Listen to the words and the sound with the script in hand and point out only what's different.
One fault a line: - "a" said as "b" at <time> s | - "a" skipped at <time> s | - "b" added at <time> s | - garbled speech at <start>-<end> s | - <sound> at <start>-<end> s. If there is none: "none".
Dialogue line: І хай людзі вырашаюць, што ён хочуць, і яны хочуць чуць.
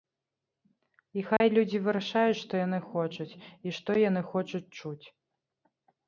- dropout at 1.4-1.4 s
- "ён" said as "яны" at 2.6 s
- "што" added at 3.8 s